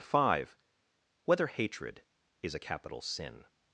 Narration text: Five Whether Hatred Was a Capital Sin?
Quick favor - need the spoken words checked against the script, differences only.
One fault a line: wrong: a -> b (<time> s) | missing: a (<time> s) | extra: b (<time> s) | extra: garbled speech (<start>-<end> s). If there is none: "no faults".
wrong: Was -> Is (2.4 s)